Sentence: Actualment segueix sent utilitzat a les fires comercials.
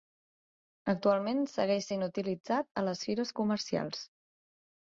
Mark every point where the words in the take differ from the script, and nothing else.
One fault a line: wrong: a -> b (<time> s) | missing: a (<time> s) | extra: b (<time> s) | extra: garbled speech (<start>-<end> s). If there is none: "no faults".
no faults